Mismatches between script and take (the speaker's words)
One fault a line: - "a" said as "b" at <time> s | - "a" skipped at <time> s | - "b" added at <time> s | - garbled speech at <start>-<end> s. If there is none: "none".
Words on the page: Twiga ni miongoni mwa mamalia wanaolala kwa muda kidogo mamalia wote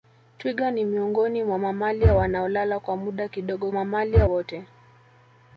none